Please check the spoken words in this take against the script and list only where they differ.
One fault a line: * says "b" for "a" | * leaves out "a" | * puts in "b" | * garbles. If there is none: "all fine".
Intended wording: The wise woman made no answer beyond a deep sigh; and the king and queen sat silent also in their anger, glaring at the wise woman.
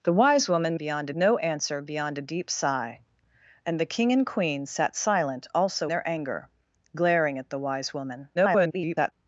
* says "beyond" for "made"
* leaves out "in"
* garbles